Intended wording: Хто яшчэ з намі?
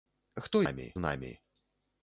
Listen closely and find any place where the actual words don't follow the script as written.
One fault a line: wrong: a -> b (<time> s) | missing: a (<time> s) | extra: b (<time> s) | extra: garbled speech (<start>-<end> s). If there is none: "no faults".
wrong: яшчэ -> намі (0.6 s)